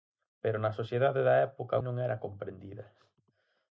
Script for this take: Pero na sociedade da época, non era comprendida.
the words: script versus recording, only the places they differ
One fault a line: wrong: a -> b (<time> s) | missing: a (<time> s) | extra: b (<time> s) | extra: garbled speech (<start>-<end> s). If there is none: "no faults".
no faults